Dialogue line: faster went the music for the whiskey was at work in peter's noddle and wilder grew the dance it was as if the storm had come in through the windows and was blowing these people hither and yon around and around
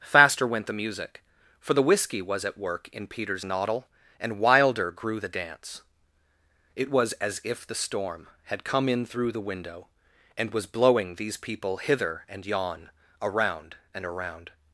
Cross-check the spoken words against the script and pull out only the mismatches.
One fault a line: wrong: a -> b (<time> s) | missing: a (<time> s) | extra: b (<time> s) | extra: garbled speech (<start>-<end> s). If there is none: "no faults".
wrong: windows -> window (9.4 s)